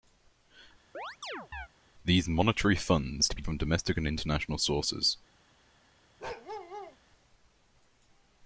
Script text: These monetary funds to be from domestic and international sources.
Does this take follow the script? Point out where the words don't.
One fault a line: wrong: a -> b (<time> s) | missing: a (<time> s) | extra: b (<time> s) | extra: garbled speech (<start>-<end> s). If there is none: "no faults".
no faults